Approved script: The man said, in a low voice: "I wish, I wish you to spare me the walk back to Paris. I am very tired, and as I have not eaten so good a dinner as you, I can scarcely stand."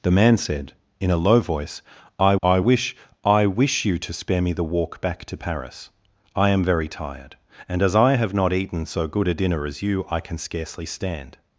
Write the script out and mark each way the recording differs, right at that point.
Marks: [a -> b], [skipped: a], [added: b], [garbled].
The man said, in a low voice: "I [added: I] wish, I wish you to spare me the walk back to Paris. I am very tired, and as I have not eaten so good a dinner as you, I can scarcely stand."